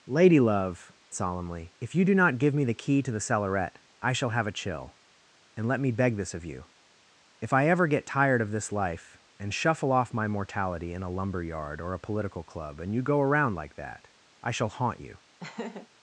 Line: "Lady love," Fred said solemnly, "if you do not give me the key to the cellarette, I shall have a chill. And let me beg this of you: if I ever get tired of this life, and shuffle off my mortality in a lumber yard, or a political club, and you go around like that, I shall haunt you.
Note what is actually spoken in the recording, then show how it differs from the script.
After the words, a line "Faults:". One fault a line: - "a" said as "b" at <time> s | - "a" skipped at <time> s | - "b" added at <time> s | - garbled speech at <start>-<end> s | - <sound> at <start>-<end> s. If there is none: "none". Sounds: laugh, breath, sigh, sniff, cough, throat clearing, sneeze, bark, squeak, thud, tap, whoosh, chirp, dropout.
"Lady love," Solemnly, "if you do not give me the key to the cellarette, I shall have a chill. And let me beg this of you: if I ever get tired of this life, and shuffle off my mortality in a lumber yard, or a political club, and you go around like that, I shall haunt you.
Faults:
- "Fred said" skipped at 0.9 s
- laugh at 15.4-15.9 s